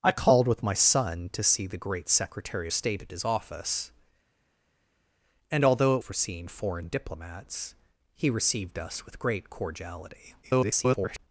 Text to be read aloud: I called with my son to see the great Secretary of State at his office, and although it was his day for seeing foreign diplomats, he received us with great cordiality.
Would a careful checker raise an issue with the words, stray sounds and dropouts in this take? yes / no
yes